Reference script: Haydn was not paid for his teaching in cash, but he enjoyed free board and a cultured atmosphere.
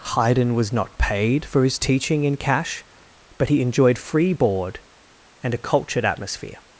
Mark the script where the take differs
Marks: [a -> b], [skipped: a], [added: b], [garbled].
Haydn was not paid for his teaching in cash, but he enjoyed free board and a cultured atmosphere.